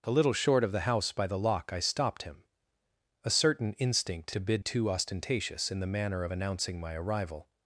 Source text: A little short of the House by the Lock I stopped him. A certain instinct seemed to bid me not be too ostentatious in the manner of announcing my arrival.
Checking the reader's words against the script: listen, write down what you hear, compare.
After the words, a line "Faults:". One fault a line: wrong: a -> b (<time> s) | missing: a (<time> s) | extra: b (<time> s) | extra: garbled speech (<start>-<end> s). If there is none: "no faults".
A little short of the House by the Lock I stopped him. A certain instinct to bid too ostentatious in the manner of announcing my arrival.
Faults:
missing: seemed (4.3 s)
missing: me not be (4.6 s)